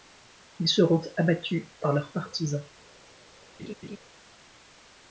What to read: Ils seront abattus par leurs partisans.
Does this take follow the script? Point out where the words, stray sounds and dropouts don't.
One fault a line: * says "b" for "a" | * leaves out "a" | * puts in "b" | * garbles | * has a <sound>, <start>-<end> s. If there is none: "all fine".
* has a laugh, 3.6-4.0 s